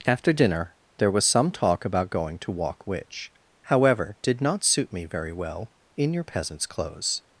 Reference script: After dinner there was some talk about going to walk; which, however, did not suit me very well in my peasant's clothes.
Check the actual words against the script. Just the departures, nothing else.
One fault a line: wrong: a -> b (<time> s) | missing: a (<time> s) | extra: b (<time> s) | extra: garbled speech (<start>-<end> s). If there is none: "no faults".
wrong: my -> your (6.1 s)